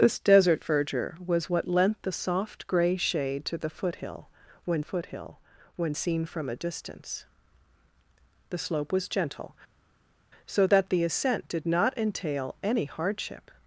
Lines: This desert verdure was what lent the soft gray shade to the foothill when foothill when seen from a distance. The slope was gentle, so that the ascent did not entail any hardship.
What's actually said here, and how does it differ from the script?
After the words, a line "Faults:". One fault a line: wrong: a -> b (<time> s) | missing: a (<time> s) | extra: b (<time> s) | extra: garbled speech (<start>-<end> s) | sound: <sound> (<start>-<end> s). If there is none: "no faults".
This desert verdure was what lent the soft gray shade to the foothill when foothill when seen from a distance. The slope was gentle, so that the ascent did not entail any hardship.
Faults:
no faults